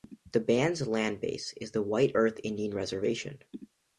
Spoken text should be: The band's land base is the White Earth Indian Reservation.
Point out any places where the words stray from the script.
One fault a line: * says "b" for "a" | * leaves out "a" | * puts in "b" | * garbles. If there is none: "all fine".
all fine